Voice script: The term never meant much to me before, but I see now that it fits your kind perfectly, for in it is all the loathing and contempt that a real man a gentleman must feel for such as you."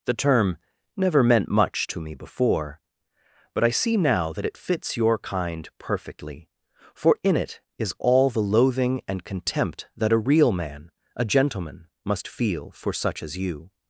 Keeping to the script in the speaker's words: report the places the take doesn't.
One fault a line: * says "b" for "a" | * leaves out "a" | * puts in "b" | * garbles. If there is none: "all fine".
all fine